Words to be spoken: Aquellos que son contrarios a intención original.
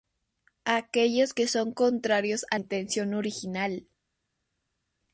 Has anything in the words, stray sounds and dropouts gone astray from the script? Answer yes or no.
no